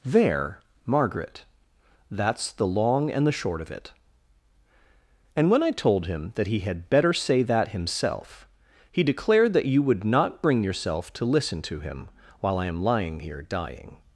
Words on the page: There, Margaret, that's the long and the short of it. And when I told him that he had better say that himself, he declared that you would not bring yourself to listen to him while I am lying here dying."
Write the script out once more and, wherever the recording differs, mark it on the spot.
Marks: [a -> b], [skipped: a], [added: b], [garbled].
There, Margaret, that's the long and the short of it. And when I told him that he had better say that himself, he declared that you would not bring yourself to listen to him while I am lying here dying."